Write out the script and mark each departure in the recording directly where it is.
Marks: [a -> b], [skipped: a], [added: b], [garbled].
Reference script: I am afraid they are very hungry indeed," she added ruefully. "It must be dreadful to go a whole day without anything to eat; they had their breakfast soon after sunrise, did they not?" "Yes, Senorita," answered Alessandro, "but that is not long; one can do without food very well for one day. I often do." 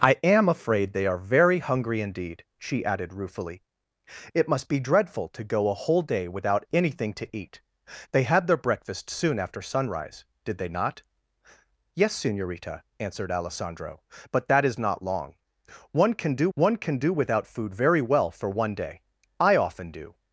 I am afraid they are very hungry indeed," she added ruefully. "It must be dreadful to go a whole day without anything to eat; they had their breakfast soon after sunrise, did they not?" "Yes, Senorita," answered Alessandro, "but that is not long; one can do [added: one can do] without food very well for one day. I often do."